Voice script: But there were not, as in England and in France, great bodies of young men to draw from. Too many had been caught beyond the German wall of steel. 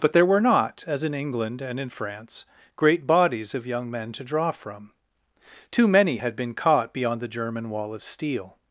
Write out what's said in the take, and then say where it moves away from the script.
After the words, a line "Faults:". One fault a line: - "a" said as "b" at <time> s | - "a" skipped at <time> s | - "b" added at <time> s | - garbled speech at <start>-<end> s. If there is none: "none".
But there were not, as in England and in France, great bodies of young men to draw from. Too many had been caught beyond the German wall of steel.
Faults:
none